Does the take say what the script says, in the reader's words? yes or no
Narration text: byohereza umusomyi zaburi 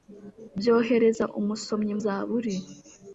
yes